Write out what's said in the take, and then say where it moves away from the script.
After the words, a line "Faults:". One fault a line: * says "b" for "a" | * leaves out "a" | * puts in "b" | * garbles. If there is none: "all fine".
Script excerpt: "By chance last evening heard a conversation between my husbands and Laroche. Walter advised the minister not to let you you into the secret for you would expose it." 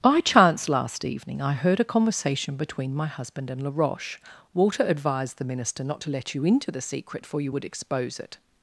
"By chance last evening I heard a conversation between my husband and Laroche. Walter advised the minister not to let you into the secret for you would expose it."
Faults:
* puts in "I"
* says "husband" for "husbands"
* leaves out "you"